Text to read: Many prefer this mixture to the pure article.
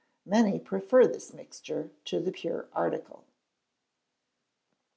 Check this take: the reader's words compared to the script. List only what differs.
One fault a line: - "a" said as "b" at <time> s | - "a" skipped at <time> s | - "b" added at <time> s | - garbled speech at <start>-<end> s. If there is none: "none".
none